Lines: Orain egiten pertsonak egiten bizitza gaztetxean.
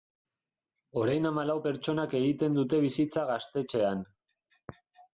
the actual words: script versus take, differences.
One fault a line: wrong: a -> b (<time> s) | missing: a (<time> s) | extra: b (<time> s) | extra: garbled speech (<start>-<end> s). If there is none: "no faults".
wrong: egiten -> hamalau (1.3 s)
extra: dute (2.6 s)